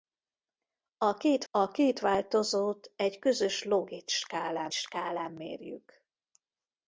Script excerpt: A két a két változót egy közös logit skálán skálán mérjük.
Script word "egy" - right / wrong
right